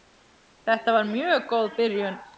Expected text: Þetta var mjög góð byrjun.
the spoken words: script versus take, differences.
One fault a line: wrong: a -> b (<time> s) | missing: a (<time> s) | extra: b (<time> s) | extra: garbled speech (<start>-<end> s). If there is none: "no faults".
no faults